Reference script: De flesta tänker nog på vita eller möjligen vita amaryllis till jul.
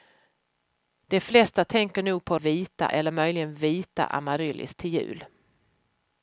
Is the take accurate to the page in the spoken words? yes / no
yes